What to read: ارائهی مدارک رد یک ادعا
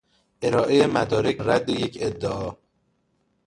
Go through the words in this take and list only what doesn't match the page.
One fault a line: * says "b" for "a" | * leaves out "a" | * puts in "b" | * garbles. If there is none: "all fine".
all fine